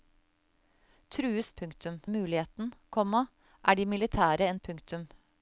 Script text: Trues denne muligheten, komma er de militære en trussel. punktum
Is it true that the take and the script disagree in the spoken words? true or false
true